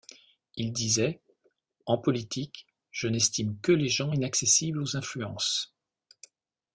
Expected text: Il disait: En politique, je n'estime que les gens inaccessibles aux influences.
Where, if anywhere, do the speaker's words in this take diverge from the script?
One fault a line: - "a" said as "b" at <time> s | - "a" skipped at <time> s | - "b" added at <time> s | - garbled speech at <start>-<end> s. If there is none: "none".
none